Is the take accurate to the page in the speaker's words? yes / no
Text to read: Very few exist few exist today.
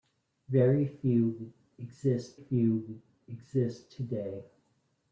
yes